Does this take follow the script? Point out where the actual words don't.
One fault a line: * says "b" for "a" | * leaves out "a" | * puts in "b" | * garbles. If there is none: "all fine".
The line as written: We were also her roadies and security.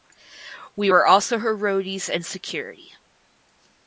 all fine